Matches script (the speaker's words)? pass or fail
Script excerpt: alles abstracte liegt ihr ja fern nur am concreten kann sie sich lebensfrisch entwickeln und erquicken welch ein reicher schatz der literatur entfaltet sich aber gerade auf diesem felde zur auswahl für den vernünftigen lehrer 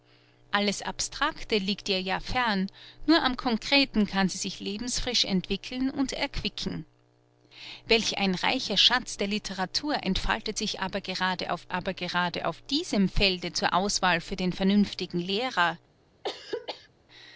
fail